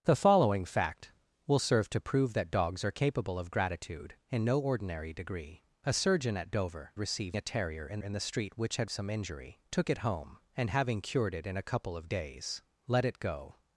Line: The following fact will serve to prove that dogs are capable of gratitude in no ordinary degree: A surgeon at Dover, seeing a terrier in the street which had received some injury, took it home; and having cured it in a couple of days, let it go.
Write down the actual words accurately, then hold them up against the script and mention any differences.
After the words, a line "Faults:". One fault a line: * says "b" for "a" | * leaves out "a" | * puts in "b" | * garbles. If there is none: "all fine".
The following fact will serve to prove that dogs are capable of gratitude in no ordinary degree: A surgeon at Dover, received a terrier in in the street which had some injury, took it home; and having cured it in a couple of days, let it go.
Faults:
* says "received" for "seeing"
* puts in "in"
* leaves out "received"